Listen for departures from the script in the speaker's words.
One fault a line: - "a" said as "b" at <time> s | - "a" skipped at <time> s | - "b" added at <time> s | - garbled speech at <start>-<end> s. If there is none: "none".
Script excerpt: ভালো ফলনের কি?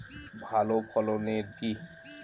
none